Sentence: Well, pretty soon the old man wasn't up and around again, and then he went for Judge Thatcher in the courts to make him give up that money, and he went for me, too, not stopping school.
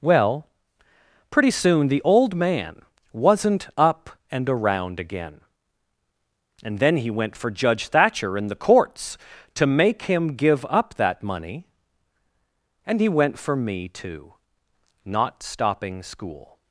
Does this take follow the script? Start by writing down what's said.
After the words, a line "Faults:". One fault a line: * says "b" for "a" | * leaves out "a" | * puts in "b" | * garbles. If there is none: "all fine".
Well, pretty soon the old man wasn't up and around again, and then he went for Judge Thatcher in the courts to make him give up that money, and he went for me, too, not stopping school.
Faults:
all fine